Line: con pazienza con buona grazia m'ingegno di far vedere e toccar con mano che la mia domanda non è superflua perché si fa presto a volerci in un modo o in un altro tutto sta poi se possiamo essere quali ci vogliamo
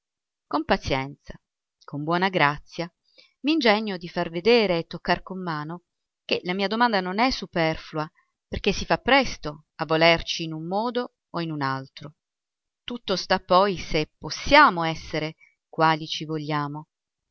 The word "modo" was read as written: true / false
true